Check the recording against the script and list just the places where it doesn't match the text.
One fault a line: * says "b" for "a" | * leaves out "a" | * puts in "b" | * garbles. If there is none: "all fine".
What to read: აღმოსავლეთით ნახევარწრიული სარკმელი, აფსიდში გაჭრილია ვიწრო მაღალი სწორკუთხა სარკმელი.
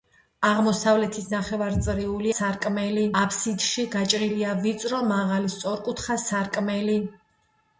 all fine